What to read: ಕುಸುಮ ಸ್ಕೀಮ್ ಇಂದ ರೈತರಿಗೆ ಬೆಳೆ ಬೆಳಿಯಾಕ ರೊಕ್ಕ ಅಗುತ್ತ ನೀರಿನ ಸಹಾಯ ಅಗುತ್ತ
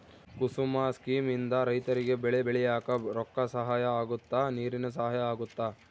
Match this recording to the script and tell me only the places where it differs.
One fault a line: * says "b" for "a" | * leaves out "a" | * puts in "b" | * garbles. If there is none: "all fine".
* puts in "ಸಹಾಯ"